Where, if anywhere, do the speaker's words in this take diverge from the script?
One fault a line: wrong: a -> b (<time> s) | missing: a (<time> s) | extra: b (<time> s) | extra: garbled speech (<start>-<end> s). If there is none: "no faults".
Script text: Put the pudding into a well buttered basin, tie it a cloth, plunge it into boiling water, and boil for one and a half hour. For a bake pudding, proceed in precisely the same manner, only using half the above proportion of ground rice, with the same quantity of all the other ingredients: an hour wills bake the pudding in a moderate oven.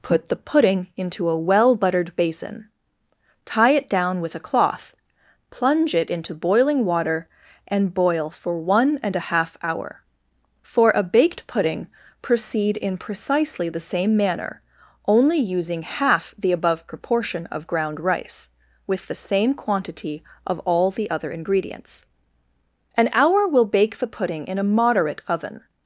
extra: down with (3.9 s)
wrong: bake -> baked (11.0 s)
wrong: wills -> will (23.5 s)